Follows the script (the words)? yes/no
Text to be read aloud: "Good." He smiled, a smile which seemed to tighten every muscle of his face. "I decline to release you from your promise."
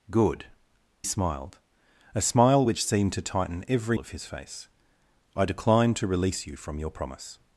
no